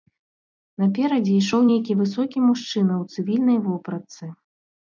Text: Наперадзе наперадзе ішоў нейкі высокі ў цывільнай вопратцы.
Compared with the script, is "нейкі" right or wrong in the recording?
right